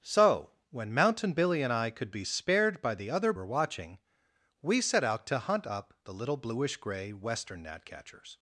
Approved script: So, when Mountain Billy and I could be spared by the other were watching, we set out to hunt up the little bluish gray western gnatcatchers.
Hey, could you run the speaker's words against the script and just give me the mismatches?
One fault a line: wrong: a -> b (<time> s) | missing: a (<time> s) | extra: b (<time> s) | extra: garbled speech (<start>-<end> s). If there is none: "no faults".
no faults